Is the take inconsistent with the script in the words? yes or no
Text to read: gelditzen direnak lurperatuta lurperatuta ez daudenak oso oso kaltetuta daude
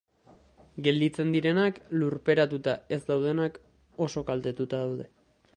yes